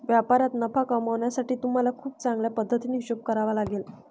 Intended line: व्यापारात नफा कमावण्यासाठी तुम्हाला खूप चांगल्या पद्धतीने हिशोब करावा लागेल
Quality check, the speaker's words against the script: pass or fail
pass